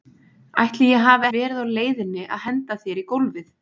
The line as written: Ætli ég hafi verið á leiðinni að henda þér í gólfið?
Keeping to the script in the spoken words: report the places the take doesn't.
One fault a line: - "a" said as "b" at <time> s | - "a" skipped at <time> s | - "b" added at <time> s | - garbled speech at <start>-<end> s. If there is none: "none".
none